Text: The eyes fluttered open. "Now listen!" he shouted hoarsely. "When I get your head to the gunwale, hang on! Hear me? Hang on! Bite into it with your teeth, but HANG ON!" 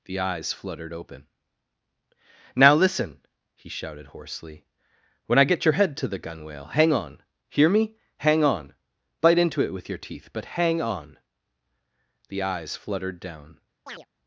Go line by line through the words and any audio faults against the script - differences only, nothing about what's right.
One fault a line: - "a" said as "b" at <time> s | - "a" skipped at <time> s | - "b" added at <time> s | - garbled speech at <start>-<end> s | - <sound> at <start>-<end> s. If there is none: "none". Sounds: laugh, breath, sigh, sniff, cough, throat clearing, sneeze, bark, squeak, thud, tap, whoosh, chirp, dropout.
- "The eyes fluttered down" added at 12.3 s
- chirp at 13.9-14.1 s